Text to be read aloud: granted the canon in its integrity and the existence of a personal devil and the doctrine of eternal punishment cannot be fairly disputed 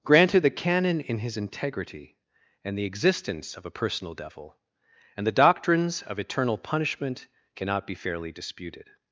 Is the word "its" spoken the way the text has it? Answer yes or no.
no